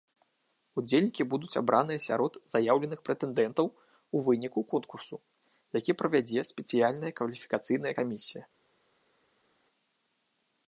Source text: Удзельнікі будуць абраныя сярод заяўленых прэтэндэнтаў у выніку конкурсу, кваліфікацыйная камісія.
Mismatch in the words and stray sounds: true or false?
true